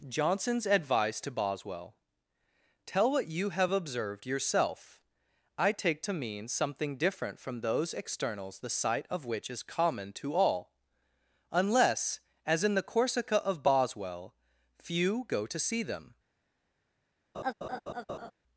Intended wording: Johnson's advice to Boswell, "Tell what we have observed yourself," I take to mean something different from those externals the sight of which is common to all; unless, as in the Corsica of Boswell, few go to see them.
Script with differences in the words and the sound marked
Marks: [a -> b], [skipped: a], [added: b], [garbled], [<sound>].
Johnson's advice to Boswell, "Tell what [we -> you] have observed yourself," I take to mean something different from those externals the sight of which is common to all; unless, as in the Corsica of Boswell, few go to see them. [laugh]